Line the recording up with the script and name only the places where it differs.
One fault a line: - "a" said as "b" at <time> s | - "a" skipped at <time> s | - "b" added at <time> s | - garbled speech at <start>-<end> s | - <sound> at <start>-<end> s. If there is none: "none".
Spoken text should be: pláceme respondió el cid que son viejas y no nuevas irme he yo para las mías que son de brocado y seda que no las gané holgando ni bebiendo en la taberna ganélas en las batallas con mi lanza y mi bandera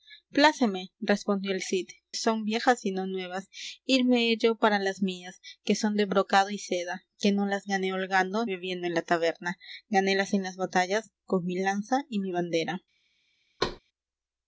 - "que" skipped at 1.9 s
- "ni" skipped at 8.5 s
- thud at 13.6-13.8 s